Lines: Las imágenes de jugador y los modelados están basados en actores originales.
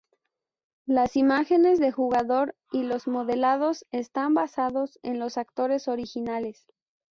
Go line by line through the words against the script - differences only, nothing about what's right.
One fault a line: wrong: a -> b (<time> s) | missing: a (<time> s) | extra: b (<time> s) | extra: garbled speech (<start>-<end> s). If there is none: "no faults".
extra: los (5.2 s)